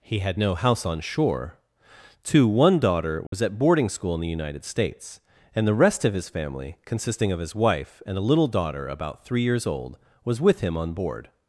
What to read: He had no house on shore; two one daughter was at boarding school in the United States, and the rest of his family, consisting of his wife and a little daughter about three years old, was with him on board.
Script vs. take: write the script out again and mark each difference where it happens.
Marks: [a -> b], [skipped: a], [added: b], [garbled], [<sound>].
He had no house on shore; two one daughter was [dropout] at boarding school in the United States, and the rest of his family, consisting of his wife and a little daughter about three years old, was with him on board.